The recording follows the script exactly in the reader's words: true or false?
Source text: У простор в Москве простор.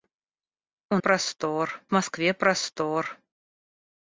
true